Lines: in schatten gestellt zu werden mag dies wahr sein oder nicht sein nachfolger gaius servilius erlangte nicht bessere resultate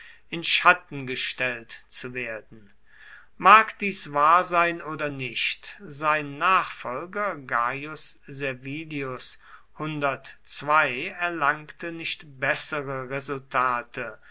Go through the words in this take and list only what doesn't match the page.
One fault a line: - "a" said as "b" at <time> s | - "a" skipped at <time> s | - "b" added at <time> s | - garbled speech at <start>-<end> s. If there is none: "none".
none